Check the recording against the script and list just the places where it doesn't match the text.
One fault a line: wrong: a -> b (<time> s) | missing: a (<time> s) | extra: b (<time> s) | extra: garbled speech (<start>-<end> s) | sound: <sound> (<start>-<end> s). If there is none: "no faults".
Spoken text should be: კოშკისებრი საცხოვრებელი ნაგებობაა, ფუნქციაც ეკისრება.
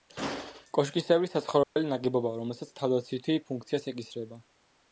sound: dropout (1.6-1.8 s)
extra: რომელსაც თავდაცვითი (2.4 s)